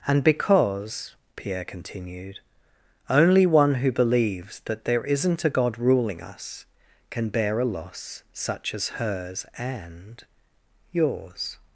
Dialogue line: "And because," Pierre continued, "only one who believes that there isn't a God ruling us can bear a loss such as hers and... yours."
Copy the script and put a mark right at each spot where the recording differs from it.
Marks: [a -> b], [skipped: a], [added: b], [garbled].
"And because," Pierre continued, "only one who believes that there isn't a God ruling us can bear a loss such as hers and... yours."